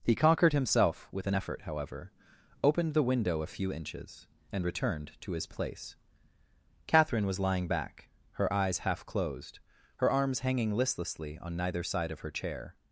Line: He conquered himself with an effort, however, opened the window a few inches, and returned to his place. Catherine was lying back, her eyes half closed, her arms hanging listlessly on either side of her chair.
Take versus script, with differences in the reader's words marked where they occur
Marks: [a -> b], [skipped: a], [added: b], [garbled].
He conquered himself with an effort, however, opened the window a few inches, and returned to his place. Catherine was lying back, her eyes half closed, her arms hanging listlessly on [either -> neither] side of her chair.